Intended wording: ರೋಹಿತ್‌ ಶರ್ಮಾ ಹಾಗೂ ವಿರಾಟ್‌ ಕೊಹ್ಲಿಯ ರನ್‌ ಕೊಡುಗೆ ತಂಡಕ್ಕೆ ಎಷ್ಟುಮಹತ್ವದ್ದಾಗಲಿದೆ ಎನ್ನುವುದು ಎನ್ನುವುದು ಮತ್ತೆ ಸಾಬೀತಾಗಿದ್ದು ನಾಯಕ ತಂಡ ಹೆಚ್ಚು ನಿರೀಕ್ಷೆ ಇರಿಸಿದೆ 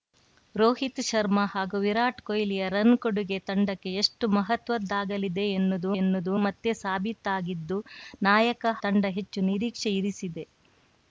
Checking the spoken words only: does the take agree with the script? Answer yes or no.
yes